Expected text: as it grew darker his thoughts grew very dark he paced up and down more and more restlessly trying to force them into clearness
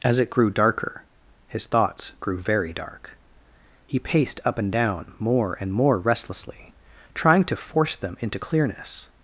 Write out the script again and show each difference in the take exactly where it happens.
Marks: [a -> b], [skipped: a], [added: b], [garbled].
as it grew darker his thoughts grew very dark he paced up and down more and more restlessly trying to force them into clearness